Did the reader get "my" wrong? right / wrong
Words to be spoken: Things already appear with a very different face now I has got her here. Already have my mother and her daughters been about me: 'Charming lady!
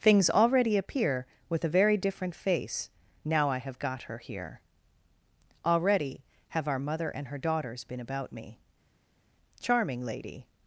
wrong